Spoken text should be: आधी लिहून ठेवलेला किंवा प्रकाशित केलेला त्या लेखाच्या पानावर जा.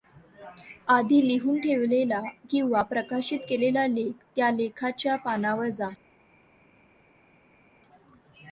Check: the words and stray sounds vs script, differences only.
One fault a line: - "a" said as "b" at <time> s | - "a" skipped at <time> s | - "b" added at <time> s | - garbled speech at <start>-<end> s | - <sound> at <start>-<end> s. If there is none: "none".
- "लेख" added at 3.9 s